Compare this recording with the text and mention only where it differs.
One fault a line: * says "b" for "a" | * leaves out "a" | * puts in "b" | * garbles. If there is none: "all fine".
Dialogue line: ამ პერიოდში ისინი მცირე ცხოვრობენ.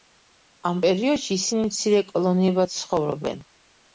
* puts in "კოლონიებად"